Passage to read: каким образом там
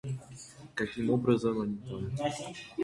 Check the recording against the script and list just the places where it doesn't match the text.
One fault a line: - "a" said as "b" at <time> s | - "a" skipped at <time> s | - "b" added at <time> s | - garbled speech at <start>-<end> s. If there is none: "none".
- "они" added at 1.6 s